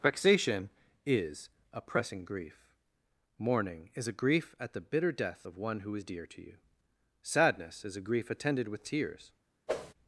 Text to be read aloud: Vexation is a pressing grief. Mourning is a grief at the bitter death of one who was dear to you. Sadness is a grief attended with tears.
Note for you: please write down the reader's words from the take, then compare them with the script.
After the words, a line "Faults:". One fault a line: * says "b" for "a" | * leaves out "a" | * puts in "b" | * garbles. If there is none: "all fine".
Vexation is a pressing grief. Mourning is a grief at the bitter death of one who is dear to you. Sadness is a grief attended with tears.
Faults:
* says "is" for "was"